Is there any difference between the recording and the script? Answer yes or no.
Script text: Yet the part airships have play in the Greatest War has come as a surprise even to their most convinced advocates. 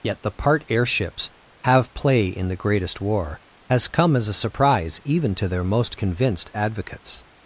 no